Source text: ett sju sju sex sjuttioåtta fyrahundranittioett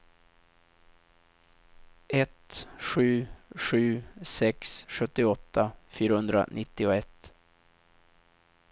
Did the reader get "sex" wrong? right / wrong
right